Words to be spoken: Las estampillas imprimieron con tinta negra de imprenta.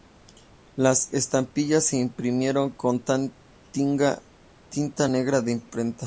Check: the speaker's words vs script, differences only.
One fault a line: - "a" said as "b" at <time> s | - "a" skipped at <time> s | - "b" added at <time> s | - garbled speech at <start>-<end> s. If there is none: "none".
- "se" added at 1.9 s